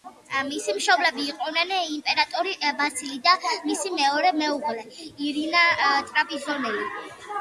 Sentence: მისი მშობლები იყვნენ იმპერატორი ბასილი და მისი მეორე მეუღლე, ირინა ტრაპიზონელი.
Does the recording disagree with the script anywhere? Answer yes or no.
no